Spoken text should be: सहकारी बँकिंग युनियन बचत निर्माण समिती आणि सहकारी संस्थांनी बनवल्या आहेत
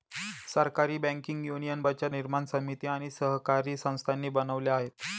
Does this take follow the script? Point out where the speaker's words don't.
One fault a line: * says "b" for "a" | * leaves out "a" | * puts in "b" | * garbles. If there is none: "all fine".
all fine